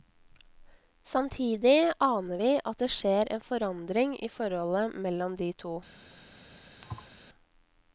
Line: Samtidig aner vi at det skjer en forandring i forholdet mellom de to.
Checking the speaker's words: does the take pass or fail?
pass